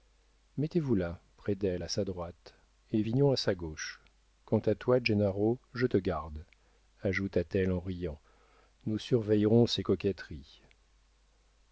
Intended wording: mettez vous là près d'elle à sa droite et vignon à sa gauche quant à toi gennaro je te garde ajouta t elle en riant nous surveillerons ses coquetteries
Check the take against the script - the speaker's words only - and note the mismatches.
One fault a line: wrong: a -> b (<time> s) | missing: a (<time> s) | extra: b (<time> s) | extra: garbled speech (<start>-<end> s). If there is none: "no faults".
no faults